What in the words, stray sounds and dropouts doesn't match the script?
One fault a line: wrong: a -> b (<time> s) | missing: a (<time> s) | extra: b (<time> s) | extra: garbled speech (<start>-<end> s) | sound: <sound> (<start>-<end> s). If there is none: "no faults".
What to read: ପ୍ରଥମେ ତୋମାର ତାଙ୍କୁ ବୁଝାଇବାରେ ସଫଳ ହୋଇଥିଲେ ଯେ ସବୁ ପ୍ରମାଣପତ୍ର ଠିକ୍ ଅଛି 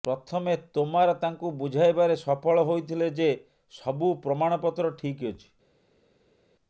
no faults